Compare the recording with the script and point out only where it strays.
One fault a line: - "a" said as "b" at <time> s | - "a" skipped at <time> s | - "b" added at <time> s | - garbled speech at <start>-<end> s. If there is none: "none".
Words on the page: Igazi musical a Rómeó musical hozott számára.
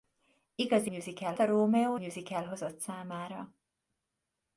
none